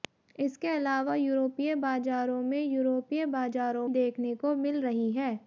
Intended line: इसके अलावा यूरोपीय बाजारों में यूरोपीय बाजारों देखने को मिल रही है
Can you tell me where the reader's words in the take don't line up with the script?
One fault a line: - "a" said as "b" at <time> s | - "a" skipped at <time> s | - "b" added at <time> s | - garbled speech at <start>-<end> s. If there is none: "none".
none